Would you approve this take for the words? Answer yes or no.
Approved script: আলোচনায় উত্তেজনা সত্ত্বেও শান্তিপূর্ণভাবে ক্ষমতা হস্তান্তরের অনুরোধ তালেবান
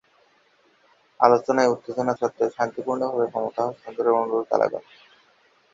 yes